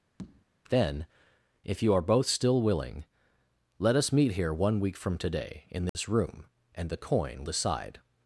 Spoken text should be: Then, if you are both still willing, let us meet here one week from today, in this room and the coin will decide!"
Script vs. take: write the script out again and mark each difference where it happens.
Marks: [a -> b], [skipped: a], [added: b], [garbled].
Then, if you are both still willing, let us meet here one week from today, in this room and the coin [skipped: will] decide!"